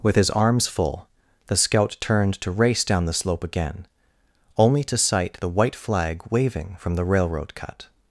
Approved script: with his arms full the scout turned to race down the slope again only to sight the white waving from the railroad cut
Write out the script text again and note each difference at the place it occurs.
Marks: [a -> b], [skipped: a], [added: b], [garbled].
with his arms full the scout turned to race down the slope again only to sight the white [added: flag] waving from the railroad cut